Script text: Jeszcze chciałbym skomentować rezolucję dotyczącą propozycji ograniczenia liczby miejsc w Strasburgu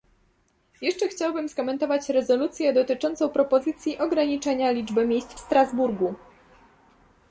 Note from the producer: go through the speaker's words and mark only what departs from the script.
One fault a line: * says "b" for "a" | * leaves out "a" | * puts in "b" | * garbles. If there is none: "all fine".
all fine